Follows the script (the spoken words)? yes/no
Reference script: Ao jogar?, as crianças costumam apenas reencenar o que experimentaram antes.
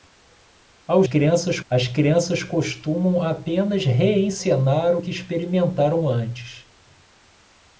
no